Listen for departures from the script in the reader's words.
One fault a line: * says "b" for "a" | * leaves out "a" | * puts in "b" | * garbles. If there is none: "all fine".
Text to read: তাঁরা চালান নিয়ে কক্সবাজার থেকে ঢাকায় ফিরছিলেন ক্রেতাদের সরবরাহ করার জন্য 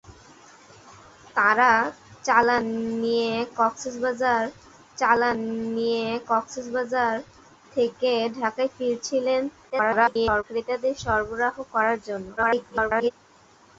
* puts in "চালান নিয়ে কক্সবাজার"
* garbles
* garbles